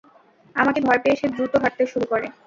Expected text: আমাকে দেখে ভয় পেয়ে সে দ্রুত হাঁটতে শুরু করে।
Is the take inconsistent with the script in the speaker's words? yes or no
yes